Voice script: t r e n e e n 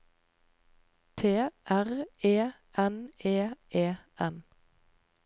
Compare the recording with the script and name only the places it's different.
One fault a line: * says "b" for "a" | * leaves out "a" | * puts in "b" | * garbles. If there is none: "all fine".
all fine